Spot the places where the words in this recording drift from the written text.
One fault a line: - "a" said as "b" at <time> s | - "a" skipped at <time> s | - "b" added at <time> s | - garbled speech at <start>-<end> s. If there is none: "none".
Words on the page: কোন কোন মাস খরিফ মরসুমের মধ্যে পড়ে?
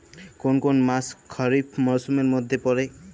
none